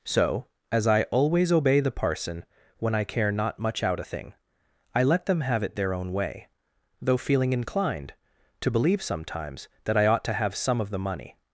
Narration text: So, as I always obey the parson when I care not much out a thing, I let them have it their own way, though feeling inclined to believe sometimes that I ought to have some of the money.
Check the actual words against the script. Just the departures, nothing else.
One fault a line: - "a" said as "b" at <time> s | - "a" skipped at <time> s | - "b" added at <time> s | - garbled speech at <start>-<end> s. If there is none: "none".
none